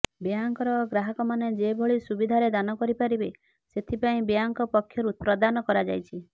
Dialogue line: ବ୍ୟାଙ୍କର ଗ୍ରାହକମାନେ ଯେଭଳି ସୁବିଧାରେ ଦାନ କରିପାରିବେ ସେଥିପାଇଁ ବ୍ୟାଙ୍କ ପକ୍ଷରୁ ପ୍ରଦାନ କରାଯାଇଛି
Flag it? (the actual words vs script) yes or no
no